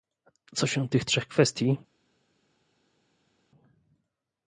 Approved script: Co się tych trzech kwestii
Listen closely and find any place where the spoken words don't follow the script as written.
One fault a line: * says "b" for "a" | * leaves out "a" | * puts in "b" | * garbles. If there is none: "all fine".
all fine